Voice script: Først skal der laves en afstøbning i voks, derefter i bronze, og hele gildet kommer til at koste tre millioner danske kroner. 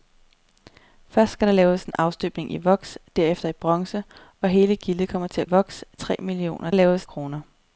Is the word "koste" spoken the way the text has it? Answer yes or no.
no